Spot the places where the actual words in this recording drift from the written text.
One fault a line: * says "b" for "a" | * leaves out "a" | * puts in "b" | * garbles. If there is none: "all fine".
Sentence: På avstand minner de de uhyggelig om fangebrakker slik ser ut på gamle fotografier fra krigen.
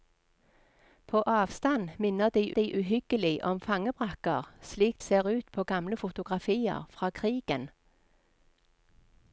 all fine